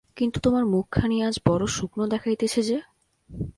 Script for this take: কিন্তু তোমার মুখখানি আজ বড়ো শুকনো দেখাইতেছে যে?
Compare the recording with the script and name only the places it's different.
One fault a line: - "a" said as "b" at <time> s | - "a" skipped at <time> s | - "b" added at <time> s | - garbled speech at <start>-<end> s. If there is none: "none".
none